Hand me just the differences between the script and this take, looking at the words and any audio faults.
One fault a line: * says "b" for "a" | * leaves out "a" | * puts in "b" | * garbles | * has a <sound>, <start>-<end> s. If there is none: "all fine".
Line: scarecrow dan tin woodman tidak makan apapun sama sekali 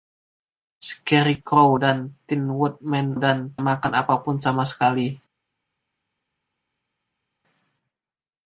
* says "dan" for "tidak"